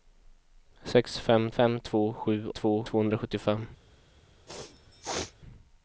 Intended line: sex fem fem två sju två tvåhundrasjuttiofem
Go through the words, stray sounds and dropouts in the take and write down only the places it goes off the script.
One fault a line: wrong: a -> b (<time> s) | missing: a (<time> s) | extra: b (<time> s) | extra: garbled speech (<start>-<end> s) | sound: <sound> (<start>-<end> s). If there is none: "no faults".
sound: sneeze (4.5-5.3 s)